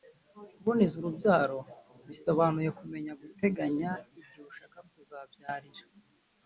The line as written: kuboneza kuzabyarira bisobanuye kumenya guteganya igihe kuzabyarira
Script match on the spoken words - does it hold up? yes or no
no